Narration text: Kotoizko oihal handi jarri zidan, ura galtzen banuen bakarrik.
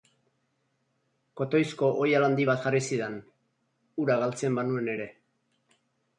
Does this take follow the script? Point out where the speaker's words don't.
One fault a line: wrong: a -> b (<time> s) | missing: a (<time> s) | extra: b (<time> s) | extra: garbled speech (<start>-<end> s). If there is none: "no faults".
extra: bat (2.5 s)
wrong: bakarrik -> ere (5.0 s)